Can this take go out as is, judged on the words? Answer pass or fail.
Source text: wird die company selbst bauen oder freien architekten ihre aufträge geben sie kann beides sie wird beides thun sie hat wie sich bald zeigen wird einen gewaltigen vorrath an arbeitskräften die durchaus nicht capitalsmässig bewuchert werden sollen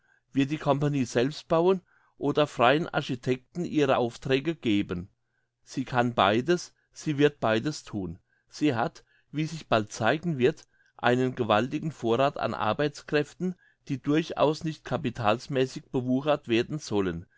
pass